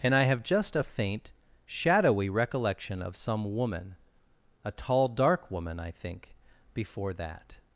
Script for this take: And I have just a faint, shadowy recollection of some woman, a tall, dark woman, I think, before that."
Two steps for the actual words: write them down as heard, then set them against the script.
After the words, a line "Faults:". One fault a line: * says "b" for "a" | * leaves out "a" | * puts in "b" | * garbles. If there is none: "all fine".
And I have just a faint, shadowy recollection of some woman, a tall, dark woman, I think, before that."
Faults:
all fine